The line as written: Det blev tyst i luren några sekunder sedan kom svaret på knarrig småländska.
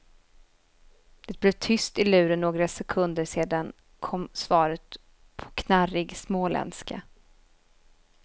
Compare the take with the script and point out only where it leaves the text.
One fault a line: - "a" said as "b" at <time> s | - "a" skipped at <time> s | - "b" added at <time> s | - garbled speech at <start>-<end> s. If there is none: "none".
none